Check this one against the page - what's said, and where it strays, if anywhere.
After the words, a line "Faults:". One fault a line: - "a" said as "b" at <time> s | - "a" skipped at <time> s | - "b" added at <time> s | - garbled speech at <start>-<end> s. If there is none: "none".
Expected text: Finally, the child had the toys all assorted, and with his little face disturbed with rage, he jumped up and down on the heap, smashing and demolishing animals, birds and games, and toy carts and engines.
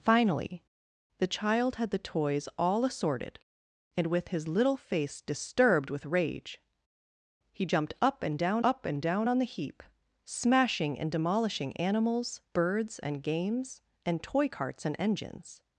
Finally, the child had the toys all assorted, and with his little face disturbed with rage, he jumped up and down up and down on the heap, smashing and demolishing animals, birds and games, and toy carts and engines.
Faults:
- "up and down" added at 8.6 s